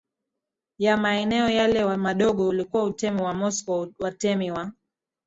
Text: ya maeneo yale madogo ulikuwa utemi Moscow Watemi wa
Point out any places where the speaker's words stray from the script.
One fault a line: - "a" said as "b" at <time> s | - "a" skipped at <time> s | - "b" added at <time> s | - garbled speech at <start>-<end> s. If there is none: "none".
- "wa" added at 3.2 s